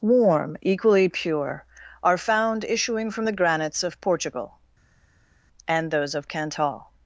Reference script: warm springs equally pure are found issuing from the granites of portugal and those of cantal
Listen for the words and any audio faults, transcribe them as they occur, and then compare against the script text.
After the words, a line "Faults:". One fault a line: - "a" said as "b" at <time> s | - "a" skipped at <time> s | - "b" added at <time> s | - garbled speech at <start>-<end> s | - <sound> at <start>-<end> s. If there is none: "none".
warm equally pure are found issuing from the granites of portugal and those of cantal
Faults:
- "springs" skipped at 0.6 s